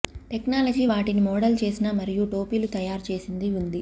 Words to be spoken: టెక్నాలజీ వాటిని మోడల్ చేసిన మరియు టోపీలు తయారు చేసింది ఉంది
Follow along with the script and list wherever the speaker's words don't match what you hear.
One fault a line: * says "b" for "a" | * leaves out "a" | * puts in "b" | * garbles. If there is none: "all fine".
all fine